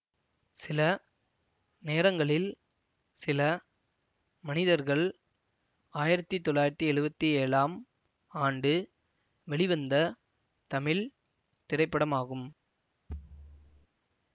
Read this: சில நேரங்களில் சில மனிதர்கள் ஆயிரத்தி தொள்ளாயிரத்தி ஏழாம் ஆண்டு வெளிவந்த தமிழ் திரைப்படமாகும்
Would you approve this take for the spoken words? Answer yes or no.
no